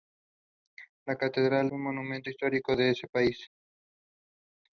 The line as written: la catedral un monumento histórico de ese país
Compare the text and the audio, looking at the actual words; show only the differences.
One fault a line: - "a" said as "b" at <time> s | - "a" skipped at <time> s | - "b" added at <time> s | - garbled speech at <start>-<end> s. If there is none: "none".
none